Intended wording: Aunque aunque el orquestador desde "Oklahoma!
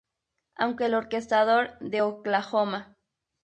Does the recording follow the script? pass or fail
fail